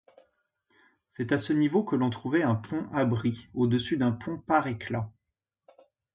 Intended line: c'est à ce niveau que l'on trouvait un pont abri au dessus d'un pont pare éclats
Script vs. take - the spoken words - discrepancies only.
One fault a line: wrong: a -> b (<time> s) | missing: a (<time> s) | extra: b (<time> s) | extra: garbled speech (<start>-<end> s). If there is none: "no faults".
no faults